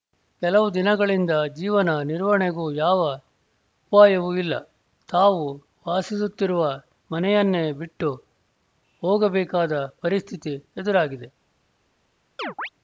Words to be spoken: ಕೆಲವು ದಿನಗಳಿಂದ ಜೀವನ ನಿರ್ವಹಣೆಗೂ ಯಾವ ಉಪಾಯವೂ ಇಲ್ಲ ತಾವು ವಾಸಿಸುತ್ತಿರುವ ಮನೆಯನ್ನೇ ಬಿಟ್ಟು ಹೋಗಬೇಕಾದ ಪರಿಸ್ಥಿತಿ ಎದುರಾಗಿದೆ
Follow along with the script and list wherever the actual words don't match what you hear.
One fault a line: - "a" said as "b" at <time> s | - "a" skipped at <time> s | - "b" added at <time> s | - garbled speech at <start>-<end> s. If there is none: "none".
none